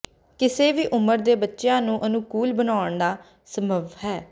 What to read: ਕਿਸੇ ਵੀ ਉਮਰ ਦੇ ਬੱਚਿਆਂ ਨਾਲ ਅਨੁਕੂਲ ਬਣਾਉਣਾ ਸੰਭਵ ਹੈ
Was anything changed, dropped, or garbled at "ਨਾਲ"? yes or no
yes